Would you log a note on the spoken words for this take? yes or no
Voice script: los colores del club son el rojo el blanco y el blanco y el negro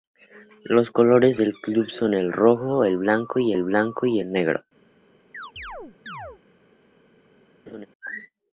no